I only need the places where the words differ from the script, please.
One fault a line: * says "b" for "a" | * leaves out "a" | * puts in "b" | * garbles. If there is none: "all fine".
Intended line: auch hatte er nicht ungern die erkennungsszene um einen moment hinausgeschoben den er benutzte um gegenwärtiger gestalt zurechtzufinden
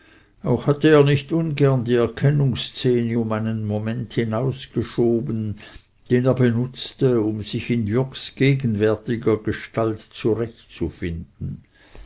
* puts in "sich in jürgs"